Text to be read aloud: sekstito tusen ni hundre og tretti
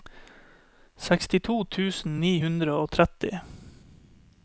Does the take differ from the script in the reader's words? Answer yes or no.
no